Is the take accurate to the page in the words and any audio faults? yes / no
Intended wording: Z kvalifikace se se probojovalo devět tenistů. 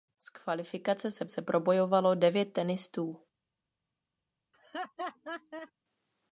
no